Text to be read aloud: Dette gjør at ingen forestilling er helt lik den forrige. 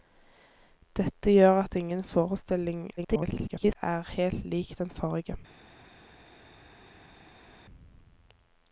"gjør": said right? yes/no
yes